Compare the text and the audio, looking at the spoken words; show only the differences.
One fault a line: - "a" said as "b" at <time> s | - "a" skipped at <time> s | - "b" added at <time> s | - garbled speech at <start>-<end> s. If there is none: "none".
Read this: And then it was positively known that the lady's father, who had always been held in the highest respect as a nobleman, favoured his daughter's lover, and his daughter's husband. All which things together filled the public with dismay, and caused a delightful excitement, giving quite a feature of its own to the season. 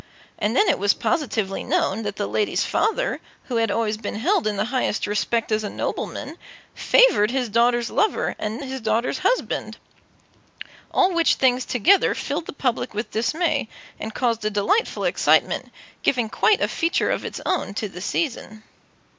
none